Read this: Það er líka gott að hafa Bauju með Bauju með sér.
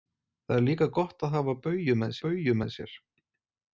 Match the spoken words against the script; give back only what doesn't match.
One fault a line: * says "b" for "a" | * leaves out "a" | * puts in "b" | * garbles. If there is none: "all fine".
all fine